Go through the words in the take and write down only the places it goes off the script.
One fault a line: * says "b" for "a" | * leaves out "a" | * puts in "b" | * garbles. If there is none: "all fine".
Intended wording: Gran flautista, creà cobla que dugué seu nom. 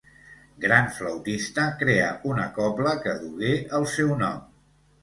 * puts in "una"
* puts in "el"